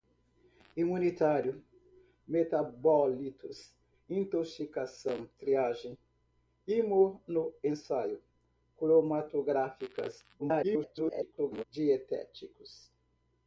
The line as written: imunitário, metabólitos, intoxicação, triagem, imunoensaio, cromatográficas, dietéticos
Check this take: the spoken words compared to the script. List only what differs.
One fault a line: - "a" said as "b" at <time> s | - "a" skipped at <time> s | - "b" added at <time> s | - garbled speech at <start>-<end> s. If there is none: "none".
- garbled speech at 10.4-11.6 s